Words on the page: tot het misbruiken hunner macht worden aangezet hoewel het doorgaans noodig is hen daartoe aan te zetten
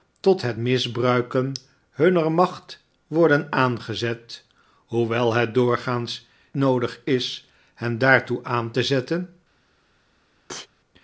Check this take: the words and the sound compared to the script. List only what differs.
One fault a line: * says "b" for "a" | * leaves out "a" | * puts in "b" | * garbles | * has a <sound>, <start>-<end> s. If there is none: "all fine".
* has a sneeze, 10.5-10.7 s